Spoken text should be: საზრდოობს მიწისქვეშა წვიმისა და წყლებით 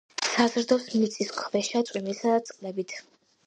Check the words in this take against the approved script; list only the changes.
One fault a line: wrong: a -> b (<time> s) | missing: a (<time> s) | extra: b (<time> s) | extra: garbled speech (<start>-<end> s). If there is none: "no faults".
no faults